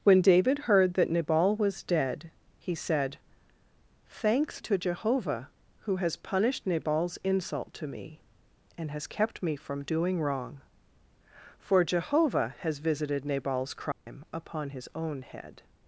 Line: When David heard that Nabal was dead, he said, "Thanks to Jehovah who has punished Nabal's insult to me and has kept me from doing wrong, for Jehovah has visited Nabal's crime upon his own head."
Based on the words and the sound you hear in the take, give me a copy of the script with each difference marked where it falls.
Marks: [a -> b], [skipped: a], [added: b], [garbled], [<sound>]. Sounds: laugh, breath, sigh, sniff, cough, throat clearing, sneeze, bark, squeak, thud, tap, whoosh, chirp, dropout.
When David heard that Nabal was dead, he said, "Thanks to Jehovah who has punished Nabal's insult to me and has kept me from doing wrong, for Jehovah has visited Nabal's crime [dropout] upon his own head."